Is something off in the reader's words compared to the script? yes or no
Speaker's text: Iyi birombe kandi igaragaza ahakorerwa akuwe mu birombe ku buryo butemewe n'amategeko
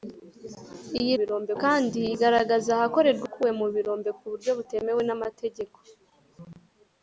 no